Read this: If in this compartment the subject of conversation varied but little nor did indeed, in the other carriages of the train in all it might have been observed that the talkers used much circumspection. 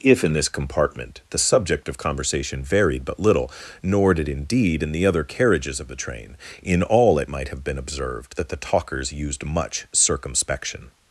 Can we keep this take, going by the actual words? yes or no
yes